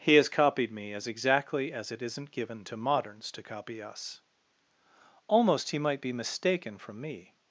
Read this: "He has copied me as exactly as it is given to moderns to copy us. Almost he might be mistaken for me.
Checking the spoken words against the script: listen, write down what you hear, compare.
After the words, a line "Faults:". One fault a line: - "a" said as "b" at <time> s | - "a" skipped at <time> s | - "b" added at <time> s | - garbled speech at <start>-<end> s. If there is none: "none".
"He has copied me as exactly as it isn't given to moderns to copy us. Almost he might be mistaken from me.
Faults:
- "is" said as "isn't" at 2.0 s
- "for" said as "from" at 6.8 s